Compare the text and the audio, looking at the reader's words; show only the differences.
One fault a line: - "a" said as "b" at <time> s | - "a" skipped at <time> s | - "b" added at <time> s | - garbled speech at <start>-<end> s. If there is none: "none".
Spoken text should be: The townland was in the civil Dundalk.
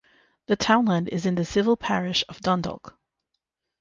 - "was" said as "is" at 1.1 s
- "parish of" added at 1.8 s